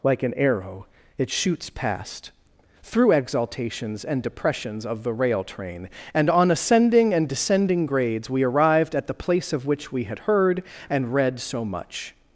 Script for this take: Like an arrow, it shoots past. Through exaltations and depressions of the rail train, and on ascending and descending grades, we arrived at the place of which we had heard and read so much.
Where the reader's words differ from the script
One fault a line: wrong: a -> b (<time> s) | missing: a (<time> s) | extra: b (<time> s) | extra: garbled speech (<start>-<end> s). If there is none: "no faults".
no faults